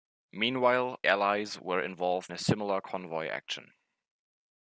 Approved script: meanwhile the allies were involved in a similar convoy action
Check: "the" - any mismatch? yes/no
yes